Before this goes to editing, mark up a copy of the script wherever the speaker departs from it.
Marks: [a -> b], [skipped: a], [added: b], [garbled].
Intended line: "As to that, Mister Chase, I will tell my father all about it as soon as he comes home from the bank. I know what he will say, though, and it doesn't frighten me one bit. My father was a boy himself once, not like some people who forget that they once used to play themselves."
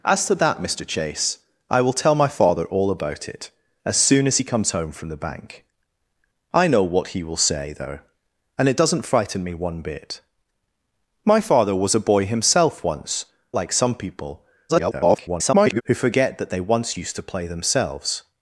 "As to that, Mister Chase, I will tell my father all about it as soon as he comes home from the bank. I know what he will say, though, and it doesn't frighten me one bit. My father was a boy himself once, [skipped: not] like some people [garbled] who forget that they once used to play themselves."